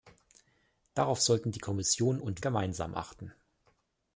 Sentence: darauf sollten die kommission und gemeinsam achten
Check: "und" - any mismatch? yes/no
no